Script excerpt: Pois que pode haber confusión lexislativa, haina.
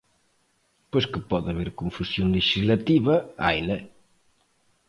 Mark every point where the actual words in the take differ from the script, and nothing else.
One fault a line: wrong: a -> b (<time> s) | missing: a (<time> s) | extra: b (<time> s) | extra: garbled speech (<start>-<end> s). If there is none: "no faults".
no faults